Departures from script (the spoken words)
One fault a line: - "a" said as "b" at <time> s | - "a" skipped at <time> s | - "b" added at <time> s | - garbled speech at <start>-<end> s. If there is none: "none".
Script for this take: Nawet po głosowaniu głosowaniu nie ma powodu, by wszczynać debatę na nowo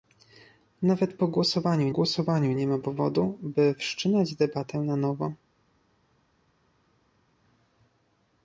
none